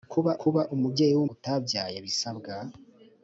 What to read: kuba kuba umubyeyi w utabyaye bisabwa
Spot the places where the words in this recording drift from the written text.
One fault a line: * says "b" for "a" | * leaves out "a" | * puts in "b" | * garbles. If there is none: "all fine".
all fine